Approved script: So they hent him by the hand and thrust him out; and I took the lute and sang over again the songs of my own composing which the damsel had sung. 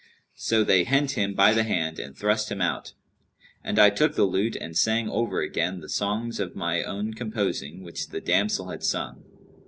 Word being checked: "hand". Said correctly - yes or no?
yes